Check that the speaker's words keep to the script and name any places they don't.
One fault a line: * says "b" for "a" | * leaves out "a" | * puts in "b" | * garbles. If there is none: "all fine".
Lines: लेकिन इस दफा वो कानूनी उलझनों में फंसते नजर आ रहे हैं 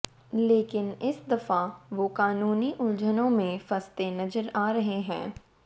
all fine